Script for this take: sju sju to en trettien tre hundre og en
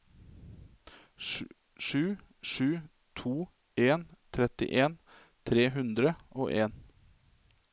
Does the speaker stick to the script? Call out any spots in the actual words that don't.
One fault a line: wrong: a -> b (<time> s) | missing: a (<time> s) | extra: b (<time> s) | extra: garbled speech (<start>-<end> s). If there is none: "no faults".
no faults